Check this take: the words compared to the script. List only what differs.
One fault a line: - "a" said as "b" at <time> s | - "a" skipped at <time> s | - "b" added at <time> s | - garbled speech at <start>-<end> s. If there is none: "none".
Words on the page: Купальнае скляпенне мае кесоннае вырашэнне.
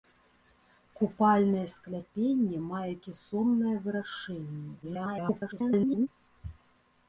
- garbled speech at 4.8-6.1 s